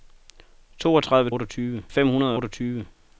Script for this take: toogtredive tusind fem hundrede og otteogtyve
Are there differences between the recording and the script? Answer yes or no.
yes